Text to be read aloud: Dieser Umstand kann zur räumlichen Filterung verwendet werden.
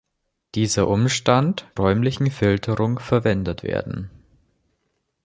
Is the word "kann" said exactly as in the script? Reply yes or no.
no